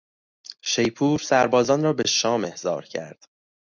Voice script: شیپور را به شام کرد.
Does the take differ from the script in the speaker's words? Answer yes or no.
yes